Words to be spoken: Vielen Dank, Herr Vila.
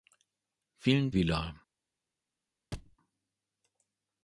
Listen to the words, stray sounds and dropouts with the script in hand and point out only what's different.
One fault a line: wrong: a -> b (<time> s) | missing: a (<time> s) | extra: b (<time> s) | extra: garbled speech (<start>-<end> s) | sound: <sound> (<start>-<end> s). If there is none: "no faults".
missing: Dank Herr (1.1 s)
sound: thud (2.7-3.0 s)